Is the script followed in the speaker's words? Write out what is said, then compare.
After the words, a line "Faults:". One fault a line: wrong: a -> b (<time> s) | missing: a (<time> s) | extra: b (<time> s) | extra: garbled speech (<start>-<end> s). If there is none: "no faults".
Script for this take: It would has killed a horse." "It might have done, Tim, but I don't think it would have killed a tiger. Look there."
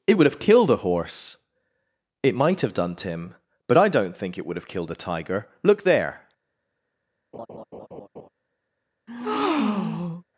It would have killed a horse." "It might have done, Tim, but I don't think it would have killed a tiger. Look there."
Faults:
wrong: has -> have (0.2 s)